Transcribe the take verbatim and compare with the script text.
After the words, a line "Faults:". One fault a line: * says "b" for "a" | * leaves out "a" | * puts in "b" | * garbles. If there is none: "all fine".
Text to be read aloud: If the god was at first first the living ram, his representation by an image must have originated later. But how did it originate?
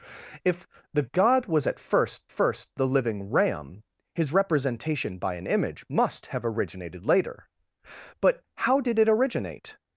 If the god was at first first the living ram, his representation by an image must have originated later. But how did it originate?
Faults:
all fine